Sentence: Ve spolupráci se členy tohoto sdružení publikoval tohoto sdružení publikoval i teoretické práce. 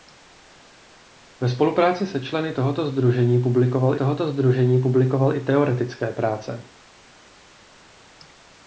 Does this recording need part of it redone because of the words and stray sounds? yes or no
no